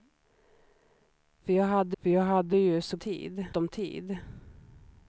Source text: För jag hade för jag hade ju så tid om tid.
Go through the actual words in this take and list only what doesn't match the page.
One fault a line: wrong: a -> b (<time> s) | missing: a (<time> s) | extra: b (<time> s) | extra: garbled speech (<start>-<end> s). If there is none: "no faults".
no faults